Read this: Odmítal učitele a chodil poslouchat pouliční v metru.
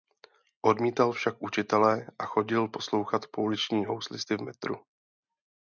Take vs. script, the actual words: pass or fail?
fail